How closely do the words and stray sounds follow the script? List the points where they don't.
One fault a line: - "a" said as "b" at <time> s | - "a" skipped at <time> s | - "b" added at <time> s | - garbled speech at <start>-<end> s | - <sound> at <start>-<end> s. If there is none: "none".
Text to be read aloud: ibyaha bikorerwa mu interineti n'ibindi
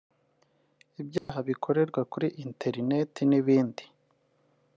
- dropout at 1.2-1.3 s
- "mu" said as "kuri" at 2.1 s